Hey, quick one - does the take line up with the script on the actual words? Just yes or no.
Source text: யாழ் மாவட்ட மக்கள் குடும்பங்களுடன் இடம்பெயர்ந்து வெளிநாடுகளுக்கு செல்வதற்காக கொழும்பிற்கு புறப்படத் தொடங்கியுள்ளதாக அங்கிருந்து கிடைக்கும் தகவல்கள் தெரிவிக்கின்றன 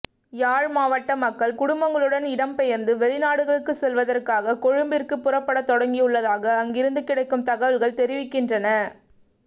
yes